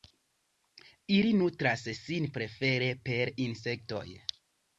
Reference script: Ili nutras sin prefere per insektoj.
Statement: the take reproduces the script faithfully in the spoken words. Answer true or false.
true